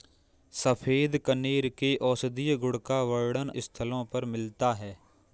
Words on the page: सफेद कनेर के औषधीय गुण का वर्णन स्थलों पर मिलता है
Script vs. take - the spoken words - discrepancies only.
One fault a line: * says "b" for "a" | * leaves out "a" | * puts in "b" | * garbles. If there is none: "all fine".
all fine